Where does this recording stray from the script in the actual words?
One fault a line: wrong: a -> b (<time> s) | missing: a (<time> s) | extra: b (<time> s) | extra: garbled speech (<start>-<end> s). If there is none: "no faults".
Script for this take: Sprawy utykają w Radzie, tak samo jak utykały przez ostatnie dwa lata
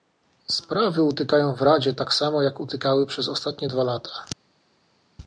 no faults